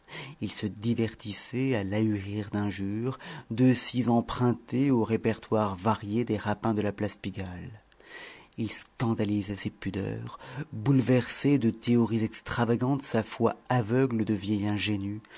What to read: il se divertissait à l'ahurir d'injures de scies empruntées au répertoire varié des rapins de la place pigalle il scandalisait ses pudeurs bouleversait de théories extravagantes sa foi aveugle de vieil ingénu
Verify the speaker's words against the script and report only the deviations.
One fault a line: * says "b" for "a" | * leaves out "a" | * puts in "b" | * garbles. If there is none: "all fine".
all fine